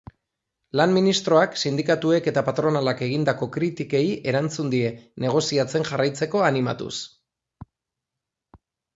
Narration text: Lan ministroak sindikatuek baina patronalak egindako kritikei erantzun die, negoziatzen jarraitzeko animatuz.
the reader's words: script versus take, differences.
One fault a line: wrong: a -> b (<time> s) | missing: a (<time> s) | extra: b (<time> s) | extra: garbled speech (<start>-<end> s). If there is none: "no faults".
wrong: baina -> eta (2.3 s)